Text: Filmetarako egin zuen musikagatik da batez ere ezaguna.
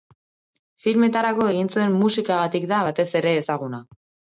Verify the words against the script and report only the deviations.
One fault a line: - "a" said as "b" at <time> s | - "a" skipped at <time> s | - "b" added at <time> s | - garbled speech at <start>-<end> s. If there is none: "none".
none